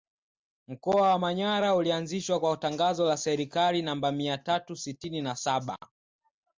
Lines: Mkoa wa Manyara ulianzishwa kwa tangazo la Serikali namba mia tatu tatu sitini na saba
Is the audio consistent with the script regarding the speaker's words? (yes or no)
no